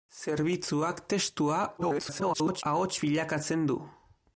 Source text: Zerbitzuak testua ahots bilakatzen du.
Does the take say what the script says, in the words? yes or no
no